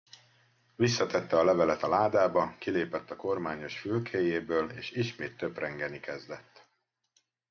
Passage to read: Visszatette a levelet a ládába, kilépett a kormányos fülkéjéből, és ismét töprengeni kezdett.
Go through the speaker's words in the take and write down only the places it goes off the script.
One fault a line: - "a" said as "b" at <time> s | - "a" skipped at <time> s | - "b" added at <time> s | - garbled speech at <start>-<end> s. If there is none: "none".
none